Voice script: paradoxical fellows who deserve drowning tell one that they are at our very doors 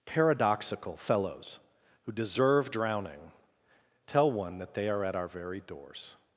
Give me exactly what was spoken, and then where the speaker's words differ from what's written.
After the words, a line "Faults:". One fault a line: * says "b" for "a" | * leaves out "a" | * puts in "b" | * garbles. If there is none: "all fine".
paradoxical fellows who deserve drowning tell one that they are at our very doors
Faults:
all fine